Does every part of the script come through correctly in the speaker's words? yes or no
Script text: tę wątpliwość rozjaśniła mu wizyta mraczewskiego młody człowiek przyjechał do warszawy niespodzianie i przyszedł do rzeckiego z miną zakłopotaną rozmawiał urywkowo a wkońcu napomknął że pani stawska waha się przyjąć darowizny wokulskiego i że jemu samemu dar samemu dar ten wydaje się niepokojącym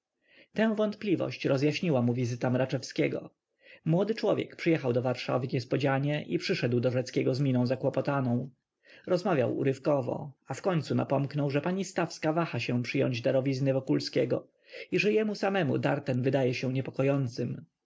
no